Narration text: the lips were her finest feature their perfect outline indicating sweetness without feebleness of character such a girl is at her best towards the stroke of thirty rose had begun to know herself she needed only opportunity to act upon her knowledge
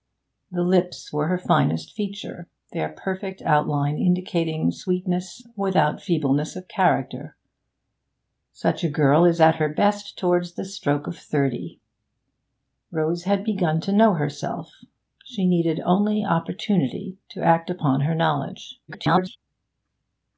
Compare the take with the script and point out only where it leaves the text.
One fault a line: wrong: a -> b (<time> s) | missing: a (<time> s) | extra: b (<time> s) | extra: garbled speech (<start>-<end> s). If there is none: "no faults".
extra: garbled speech (18.9-19.4 s)